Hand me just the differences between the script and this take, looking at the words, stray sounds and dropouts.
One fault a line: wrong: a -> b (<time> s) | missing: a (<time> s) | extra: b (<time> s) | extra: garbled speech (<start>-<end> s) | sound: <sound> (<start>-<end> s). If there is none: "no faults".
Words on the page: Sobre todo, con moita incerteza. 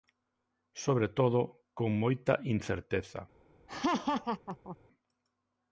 sound: laugh (3.7-4.8 s)